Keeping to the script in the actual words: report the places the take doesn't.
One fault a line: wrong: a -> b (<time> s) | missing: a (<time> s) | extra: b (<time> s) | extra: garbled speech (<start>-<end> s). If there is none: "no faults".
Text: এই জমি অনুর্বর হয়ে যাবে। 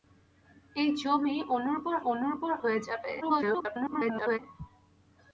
extra: অনুর্বর (2.1 s)
extra: garbled speech (3.2-4.4 s)